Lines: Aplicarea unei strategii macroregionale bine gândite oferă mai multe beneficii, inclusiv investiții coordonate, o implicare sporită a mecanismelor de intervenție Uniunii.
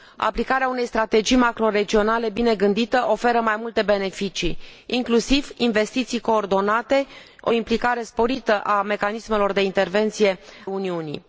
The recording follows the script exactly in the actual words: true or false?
true